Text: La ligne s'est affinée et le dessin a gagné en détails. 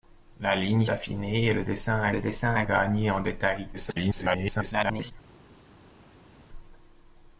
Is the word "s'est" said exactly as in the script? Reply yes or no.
no